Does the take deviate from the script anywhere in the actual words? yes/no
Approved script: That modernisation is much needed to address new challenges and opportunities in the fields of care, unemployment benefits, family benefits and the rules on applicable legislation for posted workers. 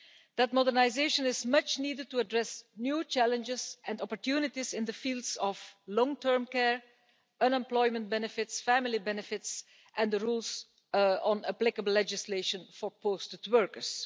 yes